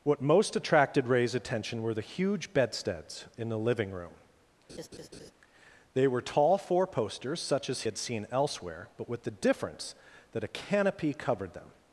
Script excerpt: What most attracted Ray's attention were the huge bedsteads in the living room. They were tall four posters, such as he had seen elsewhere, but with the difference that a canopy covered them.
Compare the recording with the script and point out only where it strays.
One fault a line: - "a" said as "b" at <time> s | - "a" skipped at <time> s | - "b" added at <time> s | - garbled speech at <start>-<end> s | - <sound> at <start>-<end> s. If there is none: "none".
- laugh at 4.7-5.3 s
- "he" skipped at 7.8 s